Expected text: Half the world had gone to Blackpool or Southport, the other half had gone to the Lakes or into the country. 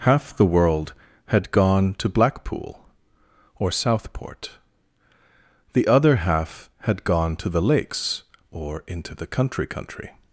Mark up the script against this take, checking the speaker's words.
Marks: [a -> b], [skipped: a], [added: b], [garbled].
Half the world had gone to Blackpool or Southport, the other half had gone to the Lakes or into the country. [added: country]